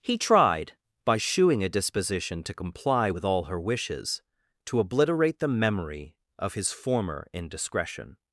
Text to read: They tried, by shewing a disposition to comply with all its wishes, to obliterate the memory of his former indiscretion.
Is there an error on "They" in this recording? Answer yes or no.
yes